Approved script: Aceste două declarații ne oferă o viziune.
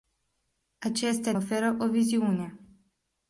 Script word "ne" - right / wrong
wrong